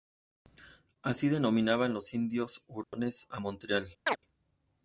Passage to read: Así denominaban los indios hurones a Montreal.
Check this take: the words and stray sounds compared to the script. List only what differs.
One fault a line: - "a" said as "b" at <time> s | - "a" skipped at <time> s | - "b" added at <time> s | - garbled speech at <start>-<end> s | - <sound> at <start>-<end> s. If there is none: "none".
- dropout at 2.8-2.9 s
- chirp at 4.1-4.2 s